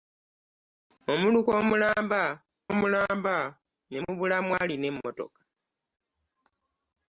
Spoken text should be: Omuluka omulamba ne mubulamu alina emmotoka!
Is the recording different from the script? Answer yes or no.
yes